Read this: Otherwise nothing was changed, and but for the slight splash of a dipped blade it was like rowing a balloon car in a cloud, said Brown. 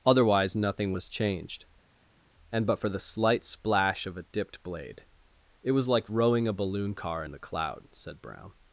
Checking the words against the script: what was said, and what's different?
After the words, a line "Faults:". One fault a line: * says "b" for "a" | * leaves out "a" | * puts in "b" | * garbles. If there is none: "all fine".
Otherwise nothing was changed, and but for the slight splash of a dipped blade it was like rowing a balloon car in the cloud, said Brown.
Faults:
* says "the" for "a"